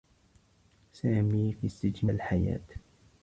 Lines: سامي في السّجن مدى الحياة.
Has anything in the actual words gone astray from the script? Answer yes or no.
yes